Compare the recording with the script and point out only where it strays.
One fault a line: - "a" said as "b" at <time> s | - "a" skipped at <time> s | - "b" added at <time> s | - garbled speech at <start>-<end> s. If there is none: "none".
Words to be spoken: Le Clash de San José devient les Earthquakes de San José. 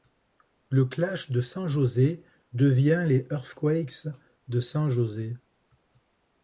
none